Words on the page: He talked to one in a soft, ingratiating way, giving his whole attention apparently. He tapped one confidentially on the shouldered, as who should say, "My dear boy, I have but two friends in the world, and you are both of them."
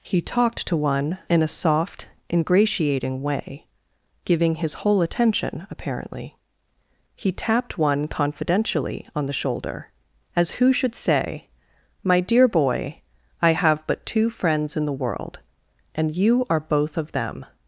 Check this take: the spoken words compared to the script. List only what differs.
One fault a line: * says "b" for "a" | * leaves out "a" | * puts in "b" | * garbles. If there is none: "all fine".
* says "shoulder" for "shouldered"